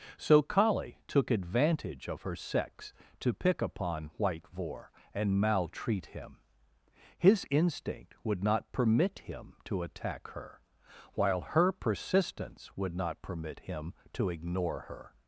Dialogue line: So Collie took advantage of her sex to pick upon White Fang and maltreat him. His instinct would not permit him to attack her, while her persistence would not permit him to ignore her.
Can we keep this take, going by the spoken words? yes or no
no